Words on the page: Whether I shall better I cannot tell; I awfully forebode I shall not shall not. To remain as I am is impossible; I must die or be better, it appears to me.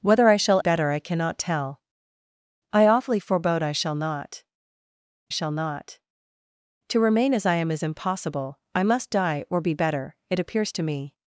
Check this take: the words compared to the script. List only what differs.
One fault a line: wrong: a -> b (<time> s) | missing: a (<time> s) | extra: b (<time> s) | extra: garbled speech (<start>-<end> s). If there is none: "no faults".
no faults